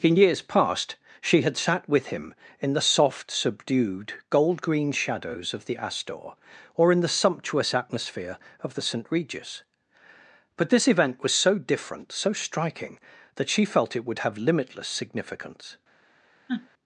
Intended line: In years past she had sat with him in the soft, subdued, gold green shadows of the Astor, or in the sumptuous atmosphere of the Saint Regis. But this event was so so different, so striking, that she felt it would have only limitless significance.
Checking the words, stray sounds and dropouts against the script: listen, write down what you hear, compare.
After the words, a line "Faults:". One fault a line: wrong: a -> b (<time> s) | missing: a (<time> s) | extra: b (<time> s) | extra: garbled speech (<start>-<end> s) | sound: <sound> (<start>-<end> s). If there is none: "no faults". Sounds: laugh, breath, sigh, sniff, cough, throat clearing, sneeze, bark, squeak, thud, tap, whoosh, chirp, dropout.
In years past she had sat with him in the soft, subdued, gold green shadows of the Astor, or in the sumptuous atmosphere of the Saint Regis. But this event was so different, so striking, that she felt it would have limitless significance.
Faults:
missing: so (11.6 s)
missing: only (14.4 s)
sound: sniff (16.5-16.7 s)